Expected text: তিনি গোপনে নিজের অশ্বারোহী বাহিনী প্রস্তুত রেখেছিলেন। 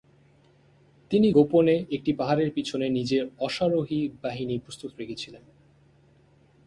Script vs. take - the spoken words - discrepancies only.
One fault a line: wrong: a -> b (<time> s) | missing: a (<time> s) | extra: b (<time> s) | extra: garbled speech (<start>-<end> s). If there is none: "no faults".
extra: একটি পাহাড়ের পিছনে (1.9 s)